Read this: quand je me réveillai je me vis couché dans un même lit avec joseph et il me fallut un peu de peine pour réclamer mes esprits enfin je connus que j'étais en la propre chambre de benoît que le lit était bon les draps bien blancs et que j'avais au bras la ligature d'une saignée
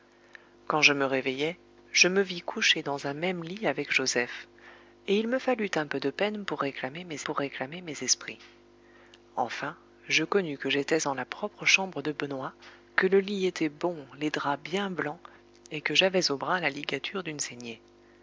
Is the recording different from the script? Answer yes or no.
yes